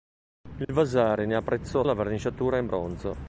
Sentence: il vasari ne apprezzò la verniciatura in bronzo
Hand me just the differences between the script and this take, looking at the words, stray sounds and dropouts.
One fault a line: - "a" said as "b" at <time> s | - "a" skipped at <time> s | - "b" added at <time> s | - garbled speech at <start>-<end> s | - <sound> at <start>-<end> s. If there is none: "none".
- dropout at 0.6-0.7 s